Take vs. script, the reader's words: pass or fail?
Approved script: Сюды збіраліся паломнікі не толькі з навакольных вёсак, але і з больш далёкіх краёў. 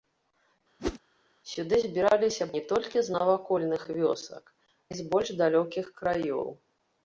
fail